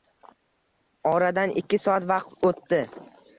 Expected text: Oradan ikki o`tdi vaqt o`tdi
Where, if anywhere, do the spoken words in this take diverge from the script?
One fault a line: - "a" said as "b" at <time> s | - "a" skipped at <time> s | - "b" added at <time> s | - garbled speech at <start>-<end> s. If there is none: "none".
- "o`tdi" said as "soat" at 1.9 s